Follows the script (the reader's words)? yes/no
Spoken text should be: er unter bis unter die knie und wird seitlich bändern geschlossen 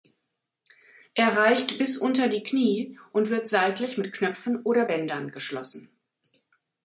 no